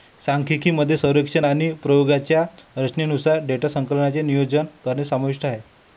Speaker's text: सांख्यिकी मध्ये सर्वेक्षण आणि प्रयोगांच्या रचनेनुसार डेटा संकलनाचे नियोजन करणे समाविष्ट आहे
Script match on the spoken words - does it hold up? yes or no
yes